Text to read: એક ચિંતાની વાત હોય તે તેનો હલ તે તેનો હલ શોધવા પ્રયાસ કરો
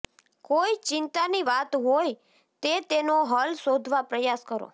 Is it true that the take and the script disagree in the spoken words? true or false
true